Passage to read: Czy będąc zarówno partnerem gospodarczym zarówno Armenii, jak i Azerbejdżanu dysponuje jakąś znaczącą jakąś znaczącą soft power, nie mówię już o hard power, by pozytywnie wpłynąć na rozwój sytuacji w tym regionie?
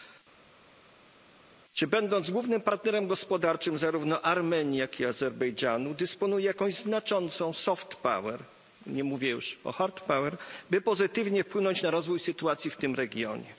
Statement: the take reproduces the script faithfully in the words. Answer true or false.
false